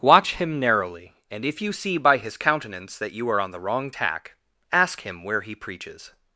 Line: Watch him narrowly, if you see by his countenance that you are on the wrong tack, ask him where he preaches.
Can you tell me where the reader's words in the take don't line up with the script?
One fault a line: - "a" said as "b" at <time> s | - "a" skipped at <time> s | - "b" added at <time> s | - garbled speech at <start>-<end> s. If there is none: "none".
- "and" added at 1.3 s